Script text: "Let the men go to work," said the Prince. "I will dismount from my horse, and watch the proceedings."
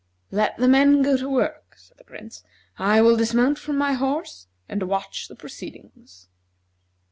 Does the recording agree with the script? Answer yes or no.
yes